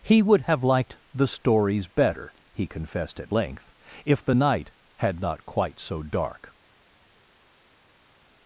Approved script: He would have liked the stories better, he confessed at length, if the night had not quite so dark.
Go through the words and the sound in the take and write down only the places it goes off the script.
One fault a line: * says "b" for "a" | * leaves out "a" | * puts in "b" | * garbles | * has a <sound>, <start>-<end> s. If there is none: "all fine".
all fine